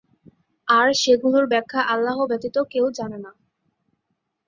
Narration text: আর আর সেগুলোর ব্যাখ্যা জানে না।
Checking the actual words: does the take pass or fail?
fail